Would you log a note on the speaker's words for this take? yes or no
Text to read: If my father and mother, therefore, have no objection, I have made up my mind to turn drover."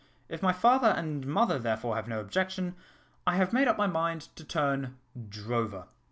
no